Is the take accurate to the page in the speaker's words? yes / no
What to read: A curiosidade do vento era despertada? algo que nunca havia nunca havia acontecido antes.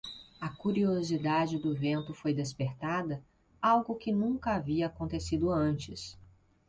no